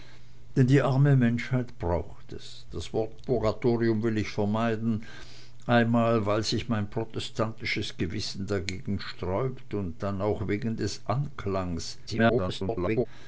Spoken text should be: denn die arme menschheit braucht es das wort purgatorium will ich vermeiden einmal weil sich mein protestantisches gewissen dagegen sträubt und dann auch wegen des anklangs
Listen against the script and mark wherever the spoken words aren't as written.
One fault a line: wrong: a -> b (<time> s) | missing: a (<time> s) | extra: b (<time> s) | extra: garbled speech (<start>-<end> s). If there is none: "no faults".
extra: garbled speech (12.1-13.1 s)